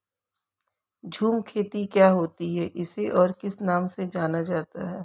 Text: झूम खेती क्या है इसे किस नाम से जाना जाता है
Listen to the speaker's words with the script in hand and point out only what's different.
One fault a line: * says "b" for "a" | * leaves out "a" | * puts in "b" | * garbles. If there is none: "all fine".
* puts in "होती"
* puts in "और"